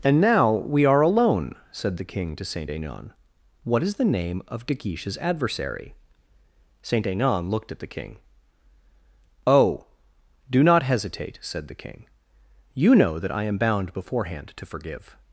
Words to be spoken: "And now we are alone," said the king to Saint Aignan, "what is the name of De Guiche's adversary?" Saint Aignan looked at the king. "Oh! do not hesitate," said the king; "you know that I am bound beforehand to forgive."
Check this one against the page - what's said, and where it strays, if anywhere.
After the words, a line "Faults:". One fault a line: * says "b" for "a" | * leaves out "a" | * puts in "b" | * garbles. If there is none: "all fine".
"And now we are alone," said the king to Saint Aignan, "what is the name of De Guiche's adversary?" Saint Aignan looked at the king. "Oh! do not hesitate," said the king; "you know that I am bound beforehand to forgive."
Faults:
all fine